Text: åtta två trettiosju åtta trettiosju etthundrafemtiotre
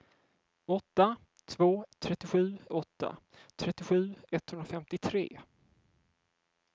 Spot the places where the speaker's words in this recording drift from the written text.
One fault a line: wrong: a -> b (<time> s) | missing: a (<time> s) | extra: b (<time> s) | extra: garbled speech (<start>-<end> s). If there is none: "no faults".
no faults